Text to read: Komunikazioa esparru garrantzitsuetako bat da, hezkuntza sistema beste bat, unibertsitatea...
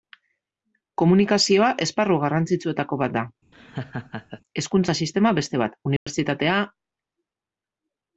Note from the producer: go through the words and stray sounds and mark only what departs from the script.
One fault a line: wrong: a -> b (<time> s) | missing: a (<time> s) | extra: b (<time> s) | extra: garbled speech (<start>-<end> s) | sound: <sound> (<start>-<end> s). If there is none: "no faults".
sound: laugh (3.5-4.4 s)
sound: dropout (6.0-6.1 s)